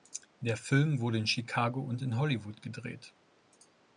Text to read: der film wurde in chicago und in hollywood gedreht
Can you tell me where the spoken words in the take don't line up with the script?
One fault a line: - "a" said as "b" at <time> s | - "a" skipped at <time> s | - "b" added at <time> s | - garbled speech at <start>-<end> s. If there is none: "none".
none